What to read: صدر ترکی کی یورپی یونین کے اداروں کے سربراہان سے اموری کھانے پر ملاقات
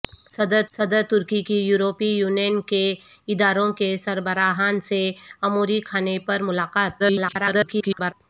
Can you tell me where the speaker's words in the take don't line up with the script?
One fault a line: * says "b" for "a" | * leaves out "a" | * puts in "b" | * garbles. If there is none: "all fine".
* puts in "صدر"
* garbles